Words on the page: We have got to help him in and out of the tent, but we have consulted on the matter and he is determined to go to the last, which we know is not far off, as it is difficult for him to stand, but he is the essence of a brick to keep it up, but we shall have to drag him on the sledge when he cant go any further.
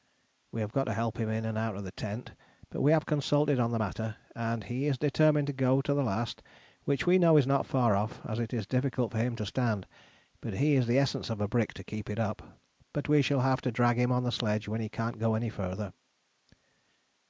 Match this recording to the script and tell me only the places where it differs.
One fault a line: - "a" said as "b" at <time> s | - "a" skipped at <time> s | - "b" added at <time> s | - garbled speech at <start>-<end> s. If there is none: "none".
none